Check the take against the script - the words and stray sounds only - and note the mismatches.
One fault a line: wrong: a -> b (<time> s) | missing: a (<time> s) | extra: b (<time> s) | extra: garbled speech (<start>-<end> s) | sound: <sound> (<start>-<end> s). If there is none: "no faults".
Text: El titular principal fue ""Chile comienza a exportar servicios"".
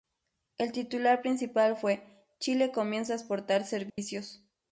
sound: dropout (3.9-4.0 s)